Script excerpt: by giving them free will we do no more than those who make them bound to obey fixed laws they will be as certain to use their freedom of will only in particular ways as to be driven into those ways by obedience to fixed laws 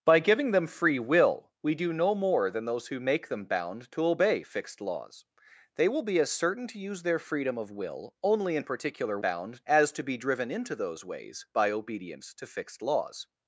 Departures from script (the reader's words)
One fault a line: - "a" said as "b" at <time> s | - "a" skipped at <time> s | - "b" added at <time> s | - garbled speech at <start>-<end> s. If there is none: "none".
- "ways" said as "bound" at 9.2 s